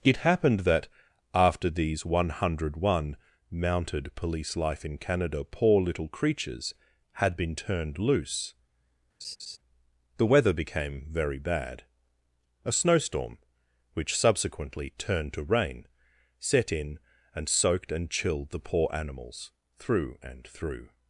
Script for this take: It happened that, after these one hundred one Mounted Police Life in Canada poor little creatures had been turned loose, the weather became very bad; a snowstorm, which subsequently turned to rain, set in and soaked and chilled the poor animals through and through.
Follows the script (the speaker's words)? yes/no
yes